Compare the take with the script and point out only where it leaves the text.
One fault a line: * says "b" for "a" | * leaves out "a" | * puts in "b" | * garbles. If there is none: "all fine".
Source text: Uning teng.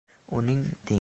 all fine